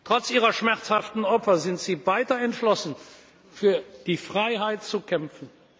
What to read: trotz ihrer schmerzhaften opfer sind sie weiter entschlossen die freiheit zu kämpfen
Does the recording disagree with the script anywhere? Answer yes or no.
yes